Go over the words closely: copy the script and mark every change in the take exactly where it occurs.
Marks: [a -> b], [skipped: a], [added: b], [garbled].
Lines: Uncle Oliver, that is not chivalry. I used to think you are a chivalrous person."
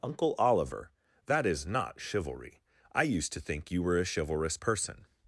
Uncle Oliver, that is not chivalry. I used to think you [are -> were] a chivalrous person."